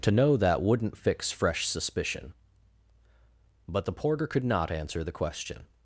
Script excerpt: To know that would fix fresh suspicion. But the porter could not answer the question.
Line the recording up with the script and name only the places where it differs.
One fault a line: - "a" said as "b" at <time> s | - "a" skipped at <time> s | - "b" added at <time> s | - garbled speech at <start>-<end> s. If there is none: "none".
- "would" said as "wouldn't" at 0.6 s